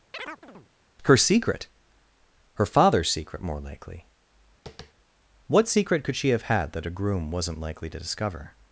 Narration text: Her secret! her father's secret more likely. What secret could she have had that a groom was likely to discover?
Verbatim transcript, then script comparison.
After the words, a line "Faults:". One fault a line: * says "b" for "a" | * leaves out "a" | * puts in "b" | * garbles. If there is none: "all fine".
Her secret! her father's secret more likely. What secret could she have had that a groom wasn't likely to discover?
Faults:
* says "wasn't" for "was"